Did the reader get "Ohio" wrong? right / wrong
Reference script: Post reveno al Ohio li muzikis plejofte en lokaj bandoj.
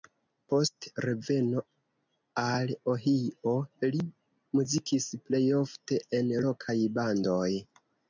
right